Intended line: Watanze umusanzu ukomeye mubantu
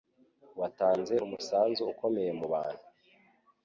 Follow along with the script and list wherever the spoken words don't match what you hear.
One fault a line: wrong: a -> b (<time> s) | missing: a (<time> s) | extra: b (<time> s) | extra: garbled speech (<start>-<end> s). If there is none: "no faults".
no faults